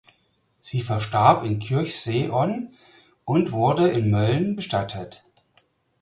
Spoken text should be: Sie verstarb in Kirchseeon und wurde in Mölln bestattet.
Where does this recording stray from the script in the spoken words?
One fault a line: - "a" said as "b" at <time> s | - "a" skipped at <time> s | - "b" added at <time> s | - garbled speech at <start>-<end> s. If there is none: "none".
none